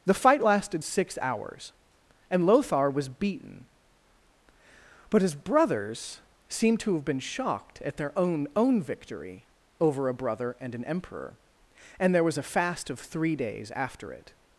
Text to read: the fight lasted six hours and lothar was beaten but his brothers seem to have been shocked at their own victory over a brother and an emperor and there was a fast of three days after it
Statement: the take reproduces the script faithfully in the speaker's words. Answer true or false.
false